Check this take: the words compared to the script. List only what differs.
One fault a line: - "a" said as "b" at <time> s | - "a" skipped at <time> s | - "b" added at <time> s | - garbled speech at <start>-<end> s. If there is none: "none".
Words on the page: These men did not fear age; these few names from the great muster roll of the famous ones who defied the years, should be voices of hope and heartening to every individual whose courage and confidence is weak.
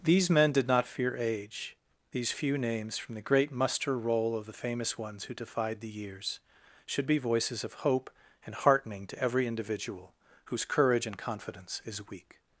none